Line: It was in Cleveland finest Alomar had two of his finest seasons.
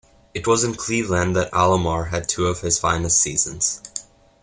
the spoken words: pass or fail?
fail